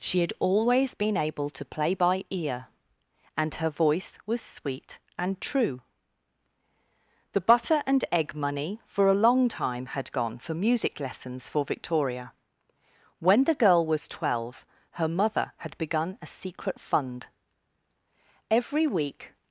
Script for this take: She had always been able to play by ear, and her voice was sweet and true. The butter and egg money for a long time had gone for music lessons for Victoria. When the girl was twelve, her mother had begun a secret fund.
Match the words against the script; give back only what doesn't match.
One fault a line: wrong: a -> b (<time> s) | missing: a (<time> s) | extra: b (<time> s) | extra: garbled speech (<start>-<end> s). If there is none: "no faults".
extra: Every week (18.5 s)